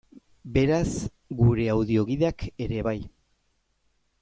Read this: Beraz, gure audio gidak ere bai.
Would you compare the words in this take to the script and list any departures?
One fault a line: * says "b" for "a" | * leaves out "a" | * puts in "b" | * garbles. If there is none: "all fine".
all fine